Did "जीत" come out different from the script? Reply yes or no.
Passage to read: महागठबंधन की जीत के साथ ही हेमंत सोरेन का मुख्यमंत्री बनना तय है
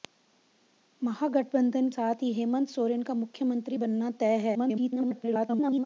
yes